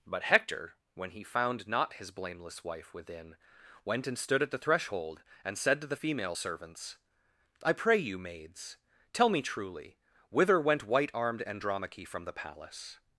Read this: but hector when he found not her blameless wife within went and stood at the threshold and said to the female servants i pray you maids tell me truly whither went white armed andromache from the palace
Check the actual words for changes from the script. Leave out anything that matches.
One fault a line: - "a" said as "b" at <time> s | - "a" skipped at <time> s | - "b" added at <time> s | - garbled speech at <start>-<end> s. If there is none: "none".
- "her" said as "his" at 1.9 s